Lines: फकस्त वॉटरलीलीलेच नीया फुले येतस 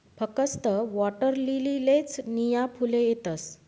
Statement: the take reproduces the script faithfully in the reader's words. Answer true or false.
true